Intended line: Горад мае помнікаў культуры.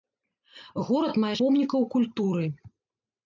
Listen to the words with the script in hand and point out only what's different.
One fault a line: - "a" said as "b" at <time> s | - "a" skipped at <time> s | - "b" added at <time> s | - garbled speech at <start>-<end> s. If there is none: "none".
none